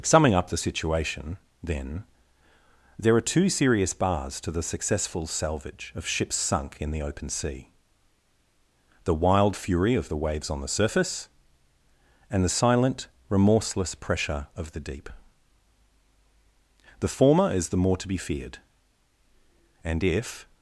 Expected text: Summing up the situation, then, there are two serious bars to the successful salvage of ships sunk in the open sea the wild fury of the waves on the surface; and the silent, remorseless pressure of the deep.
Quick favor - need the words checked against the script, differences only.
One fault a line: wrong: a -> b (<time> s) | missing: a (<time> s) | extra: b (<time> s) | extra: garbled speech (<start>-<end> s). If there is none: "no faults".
extra: The former is the more to be feared and if (17.0 s)